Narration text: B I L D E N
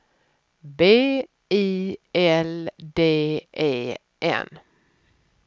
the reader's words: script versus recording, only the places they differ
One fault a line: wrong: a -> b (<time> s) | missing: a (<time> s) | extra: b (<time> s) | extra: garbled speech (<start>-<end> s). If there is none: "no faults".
no faults